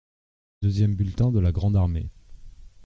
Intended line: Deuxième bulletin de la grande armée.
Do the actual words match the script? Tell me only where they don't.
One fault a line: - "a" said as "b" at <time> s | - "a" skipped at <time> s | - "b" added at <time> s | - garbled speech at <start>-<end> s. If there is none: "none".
none